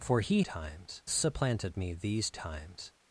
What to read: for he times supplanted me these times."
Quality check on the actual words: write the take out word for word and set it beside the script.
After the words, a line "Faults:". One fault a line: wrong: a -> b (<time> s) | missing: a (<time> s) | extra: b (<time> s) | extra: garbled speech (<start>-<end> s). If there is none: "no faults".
for he times supplanted me these times."
Faults:
no faults